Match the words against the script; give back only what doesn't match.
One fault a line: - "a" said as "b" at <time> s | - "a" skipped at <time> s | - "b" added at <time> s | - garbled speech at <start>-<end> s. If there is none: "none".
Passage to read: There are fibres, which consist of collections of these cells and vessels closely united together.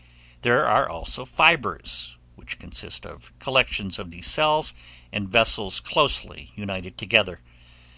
- "also" added at 0.9 s